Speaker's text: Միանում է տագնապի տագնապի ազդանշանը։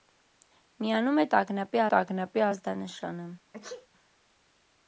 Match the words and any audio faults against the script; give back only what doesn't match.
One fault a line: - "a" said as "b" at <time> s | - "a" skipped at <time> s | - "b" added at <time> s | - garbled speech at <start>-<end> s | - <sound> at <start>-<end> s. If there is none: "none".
- sneeze at 3.5-3.9 s